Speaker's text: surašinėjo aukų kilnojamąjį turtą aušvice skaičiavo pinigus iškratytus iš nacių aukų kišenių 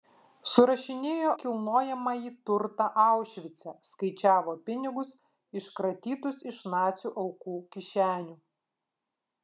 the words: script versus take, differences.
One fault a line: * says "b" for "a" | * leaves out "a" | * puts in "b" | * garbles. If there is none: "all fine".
* leaves out "aukų"